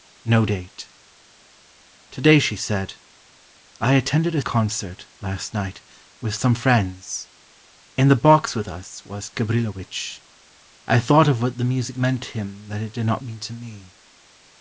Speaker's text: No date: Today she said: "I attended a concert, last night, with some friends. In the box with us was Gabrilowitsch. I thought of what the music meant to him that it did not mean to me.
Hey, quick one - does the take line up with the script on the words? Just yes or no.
yes